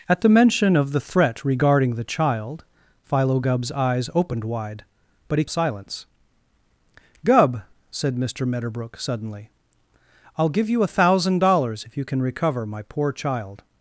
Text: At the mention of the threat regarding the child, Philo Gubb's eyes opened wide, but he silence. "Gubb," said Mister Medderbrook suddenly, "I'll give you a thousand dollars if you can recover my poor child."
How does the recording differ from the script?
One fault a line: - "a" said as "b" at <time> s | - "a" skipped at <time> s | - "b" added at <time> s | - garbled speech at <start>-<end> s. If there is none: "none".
none